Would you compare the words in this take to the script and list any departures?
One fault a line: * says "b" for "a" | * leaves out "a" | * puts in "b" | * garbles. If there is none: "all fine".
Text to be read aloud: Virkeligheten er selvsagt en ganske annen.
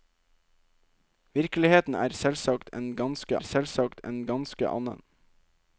* puts in "selvsagt en ganske"